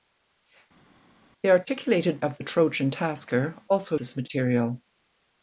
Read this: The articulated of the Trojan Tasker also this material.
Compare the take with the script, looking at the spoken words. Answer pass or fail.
pass